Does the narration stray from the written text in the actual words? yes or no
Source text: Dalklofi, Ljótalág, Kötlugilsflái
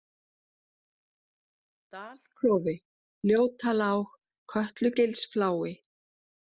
no